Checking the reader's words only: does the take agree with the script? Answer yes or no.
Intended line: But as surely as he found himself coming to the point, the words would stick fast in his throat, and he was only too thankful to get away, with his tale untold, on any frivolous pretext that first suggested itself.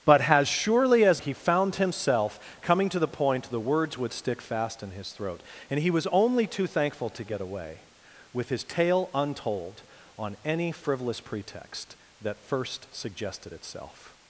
yes